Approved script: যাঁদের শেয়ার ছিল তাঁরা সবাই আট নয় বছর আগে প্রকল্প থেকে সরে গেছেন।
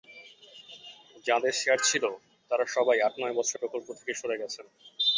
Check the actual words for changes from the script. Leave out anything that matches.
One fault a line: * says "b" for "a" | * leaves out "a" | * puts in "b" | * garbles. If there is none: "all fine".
* leaves out "আগে"